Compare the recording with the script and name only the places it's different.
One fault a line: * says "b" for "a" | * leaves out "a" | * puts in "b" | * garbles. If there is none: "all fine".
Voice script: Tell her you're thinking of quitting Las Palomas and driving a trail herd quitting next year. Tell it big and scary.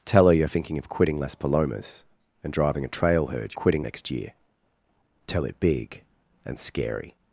all fine